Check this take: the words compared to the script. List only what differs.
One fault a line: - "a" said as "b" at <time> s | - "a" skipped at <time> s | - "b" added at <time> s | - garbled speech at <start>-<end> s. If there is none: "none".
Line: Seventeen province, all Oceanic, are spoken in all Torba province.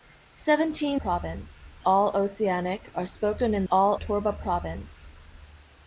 none